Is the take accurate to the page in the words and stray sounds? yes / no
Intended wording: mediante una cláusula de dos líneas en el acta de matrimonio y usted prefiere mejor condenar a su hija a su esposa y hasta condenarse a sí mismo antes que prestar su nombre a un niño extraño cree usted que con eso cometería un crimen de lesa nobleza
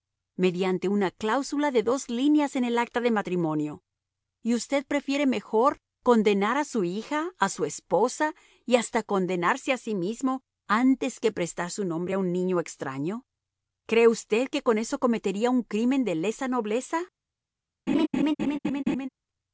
no